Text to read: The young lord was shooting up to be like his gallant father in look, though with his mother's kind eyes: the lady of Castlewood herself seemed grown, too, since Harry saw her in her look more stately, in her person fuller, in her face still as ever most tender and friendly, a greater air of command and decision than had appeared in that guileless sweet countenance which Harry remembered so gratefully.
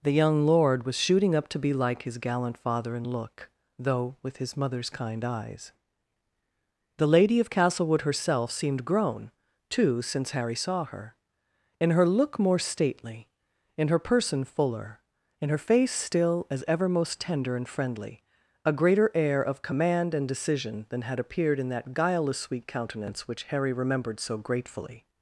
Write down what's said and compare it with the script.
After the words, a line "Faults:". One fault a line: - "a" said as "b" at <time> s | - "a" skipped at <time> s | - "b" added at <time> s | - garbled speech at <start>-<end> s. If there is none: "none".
The young lord was shooting up to be like his gallant father in look, though with his mother's kind eyes: the lady of Castlewood herself seemed grown, too, since Harry saw her in her look more stately, in her person fuller, in her face still as ever most tender and friendly, a greater air of command and decision than had appeared in that guileless sweet countenance which Harry remembered so gratefully.
Faults:
none